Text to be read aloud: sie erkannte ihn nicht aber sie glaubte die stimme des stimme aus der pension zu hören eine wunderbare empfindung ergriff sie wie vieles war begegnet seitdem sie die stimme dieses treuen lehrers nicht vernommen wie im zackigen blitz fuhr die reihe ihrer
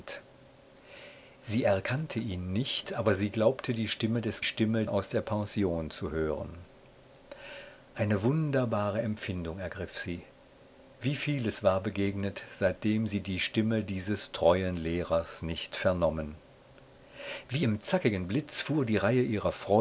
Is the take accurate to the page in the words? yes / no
yes